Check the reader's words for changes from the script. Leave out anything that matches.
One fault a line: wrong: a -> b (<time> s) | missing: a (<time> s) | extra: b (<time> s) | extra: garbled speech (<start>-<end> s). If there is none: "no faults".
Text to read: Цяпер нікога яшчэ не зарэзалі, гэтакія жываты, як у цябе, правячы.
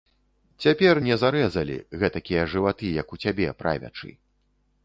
missing: нікога яшчэ (1.0 s)